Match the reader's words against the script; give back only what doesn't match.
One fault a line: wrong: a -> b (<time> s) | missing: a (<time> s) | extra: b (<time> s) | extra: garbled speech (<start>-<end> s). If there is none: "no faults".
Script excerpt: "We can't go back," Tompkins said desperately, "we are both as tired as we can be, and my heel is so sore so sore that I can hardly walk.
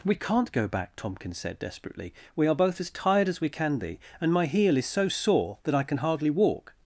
missing: so sore (5.6 s)